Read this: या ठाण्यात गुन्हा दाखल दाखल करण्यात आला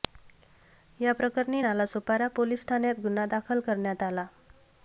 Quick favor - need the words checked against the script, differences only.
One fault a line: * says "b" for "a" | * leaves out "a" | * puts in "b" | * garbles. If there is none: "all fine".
* puts in "प्रकरणी नालासोपारा पोलीस"
* leaves out "दाखल"